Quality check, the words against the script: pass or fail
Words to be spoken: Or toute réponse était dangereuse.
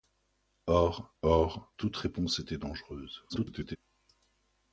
fail